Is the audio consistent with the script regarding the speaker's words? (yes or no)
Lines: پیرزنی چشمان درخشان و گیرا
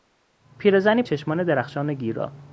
yes